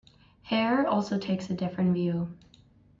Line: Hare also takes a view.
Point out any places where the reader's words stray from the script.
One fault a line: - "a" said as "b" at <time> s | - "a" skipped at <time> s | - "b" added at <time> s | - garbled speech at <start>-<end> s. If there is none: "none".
- "different" added at 1.6 s